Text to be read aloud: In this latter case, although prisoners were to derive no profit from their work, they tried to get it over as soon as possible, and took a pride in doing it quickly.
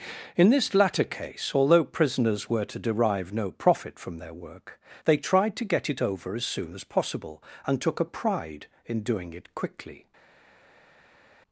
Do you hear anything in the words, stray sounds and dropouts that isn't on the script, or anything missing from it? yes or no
no